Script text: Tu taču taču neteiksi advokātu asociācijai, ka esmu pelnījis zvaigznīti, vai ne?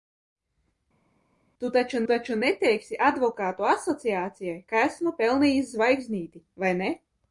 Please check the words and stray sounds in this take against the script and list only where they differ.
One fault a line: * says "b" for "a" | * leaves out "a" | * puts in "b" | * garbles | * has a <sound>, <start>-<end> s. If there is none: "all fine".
all fine